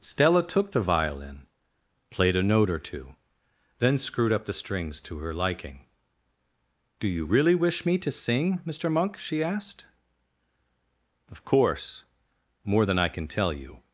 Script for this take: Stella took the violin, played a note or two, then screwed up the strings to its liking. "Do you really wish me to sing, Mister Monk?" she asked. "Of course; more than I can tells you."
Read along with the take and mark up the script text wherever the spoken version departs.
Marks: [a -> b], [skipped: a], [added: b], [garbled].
Stella took the violin, played a note or two, then screwed up the strings to [its -> her] liking. "Do you really wish me to sing, Mister Monk?" she asked. "Of course; more than I can [tells -> tell] you."